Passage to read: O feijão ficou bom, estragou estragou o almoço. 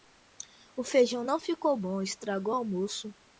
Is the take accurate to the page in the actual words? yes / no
no